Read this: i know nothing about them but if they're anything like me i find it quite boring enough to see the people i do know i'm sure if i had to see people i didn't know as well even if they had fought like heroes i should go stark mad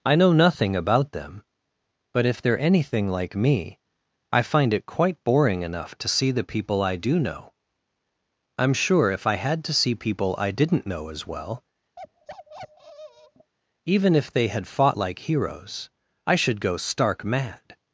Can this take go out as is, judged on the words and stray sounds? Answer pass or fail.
fail